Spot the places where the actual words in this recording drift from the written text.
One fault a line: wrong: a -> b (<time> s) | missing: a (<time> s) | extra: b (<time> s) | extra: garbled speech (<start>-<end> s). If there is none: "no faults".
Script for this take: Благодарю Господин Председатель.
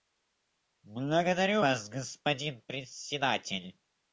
extra: Вас (1.6 s)